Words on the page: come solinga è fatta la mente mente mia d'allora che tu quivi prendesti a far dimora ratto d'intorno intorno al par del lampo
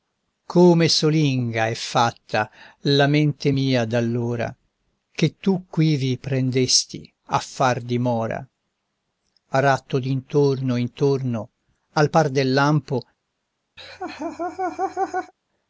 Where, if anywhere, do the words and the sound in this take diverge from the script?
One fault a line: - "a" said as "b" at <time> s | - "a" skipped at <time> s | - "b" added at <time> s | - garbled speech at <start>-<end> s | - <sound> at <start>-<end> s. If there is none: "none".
- "mente" skipped at 3.5 s
- laugh at 13.8-15.3 s